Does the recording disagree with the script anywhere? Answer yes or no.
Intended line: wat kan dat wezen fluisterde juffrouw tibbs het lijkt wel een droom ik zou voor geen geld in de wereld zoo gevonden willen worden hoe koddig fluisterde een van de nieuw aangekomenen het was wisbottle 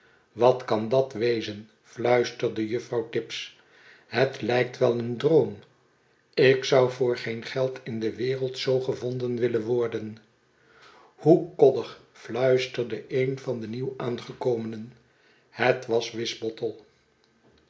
no